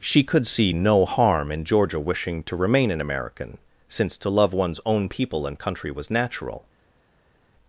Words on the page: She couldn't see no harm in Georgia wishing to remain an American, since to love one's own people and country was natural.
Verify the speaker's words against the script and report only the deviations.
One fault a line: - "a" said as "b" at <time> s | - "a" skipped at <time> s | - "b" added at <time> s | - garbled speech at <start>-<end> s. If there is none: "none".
- "couldn't" said as "could" at 0.2 s